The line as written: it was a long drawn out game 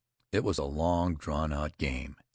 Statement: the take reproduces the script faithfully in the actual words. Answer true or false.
true